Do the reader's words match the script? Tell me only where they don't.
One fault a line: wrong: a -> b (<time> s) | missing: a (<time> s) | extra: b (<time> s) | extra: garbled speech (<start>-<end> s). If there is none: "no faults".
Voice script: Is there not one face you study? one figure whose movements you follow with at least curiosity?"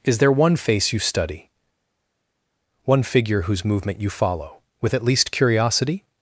missing: not (0.3 s)
wrong: movements -> movement (3.7 s)